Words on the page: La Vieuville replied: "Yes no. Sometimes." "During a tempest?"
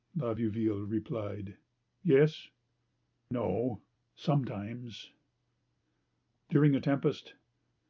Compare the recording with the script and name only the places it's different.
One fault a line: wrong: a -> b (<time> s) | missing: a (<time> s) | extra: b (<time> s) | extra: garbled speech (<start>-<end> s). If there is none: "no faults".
no faults